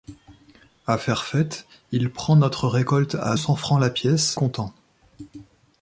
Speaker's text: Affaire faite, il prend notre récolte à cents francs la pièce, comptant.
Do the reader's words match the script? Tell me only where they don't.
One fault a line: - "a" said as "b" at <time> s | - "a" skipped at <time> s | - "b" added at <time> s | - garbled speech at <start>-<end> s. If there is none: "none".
none